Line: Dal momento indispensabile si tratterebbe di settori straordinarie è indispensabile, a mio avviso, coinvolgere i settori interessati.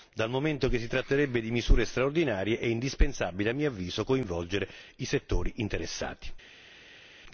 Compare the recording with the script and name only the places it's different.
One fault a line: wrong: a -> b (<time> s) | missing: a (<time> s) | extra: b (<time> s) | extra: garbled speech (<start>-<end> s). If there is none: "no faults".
wrong: indispensabile -> che (0.7 s)
wrong: settori -> misure (1.5 s)